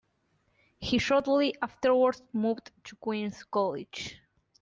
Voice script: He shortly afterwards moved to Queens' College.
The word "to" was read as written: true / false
true